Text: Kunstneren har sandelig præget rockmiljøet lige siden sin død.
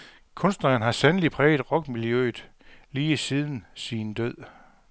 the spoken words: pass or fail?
pass